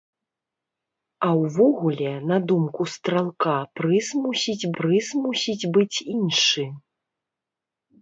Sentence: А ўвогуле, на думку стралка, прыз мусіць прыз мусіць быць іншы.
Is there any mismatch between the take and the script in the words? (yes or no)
no